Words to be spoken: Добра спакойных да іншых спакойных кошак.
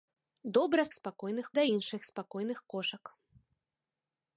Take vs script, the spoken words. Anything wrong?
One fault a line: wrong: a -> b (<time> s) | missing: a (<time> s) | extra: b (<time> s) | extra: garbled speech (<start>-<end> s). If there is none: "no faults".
no faults